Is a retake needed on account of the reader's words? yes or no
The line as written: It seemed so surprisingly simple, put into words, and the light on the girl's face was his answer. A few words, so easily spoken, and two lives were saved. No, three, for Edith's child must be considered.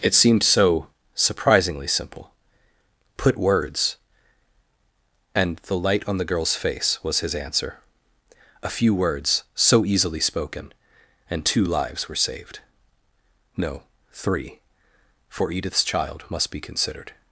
yes